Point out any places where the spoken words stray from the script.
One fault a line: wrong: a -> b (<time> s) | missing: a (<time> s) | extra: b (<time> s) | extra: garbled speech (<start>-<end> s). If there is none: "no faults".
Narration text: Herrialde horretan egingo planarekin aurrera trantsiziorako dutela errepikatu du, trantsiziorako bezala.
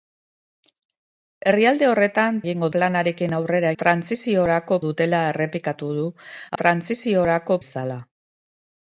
no faults